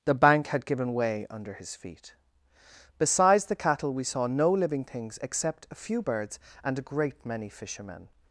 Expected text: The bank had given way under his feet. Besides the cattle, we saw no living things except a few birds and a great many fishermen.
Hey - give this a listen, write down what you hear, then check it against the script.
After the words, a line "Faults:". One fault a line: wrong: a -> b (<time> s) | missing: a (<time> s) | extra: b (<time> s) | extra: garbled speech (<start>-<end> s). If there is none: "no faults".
The bank had given way under his feet. Besides the cattle, we saw no living things except a few birds and a great many fishermen.
Faults:
no faults